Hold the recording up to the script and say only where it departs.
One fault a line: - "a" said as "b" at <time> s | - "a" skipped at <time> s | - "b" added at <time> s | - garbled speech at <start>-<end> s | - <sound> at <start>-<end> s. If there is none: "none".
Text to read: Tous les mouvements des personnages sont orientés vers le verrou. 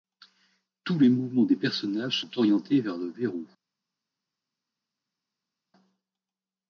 none